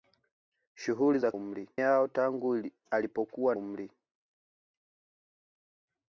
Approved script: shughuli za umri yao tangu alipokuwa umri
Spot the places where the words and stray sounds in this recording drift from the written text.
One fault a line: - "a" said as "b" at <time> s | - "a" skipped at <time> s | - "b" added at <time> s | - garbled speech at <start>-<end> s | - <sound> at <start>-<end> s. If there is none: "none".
none